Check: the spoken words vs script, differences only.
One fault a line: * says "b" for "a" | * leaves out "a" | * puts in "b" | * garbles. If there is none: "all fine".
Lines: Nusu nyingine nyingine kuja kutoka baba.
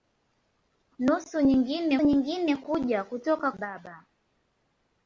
all fine